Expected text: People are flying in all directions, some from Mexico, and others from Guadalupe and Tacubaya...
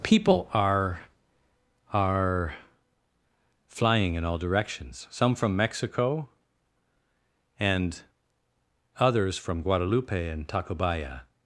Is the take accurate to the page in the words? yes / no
no